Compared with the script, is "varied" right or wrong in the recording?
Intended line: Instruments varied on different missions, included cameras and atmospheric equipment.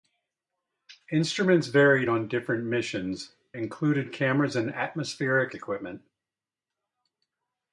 right